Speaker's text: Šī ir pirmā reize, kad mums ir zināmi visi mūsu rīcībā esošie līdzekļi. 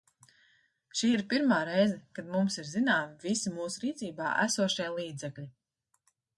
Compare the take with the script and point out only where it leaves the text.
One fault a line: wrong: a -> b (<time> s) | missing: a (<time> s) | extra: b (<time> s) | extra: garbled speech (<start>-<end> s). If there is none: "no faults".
no faults